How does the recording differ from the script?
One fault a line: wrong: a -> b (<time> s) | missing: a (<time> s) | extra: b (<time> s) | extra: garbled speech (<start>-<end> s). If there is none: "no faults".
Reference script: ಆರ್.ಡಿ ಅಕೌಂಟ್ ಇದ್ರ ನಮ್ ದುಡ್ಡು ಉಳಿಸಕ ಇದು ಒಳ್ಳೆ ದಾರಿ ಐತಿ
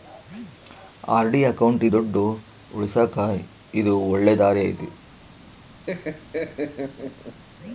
missing: ಇದ್ರ ನಮ್ (1.8 s)